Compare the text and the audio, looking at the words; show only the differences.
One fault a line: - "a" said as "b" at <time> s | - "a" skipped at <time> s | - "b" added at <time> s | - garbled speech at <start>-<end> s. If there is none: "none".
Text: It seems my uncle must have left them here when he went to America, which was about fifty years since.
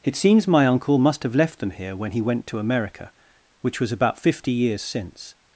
none